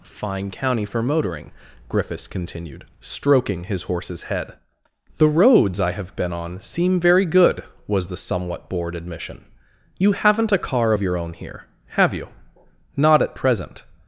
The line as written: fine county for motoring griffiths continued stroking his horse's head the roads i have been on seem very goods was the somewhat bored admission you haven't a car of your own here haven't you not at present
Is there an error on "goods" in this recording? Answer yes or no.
yes